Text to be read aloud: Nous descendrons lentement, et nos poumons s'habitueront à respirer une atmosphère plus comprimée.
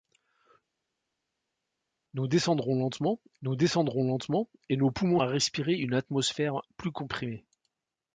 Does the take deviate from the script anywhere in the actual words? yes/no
yes